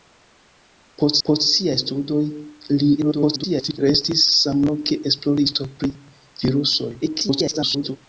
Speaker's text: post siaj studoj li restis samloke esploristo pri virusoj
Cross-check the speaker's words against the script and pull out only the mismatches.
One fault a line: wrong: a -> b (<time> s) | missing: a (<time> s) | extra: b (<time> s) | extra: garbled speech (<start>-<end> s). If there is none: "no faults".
extra: post (1.3 s)
extra: garbled speech (3.0-3.8 s)
extra: garbled speech (7.0-8.0 s)